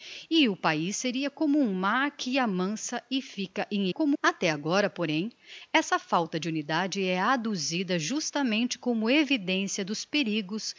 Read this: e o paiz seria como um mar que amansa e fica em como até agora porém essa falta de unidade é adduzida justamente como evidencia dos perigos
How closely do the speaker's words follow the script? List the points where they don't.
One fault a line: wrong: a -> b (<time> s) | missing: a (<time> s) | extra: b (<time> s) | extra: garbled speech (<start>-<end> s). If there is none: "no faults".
no faults